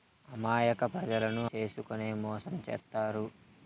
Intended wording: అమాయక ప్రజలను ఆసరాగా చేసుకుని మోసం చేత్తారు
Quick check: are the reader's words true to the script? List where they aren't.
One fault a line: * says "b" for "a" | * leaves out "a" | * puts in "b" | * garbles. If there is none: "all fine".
* leaves out "ఆసరాగా"